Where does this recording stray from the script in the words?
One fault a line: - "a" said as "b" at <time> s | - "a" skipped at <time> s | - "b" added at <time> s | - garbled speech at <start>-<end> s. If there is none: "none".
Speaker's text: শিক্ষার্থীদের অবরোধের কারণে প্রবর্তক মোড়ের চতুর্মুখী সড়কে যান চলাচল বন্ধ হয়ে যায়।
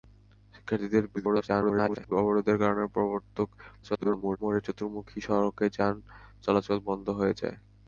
- garbled speech at 1.2-2.1 s
- garbled speech at 3.8-4.4 s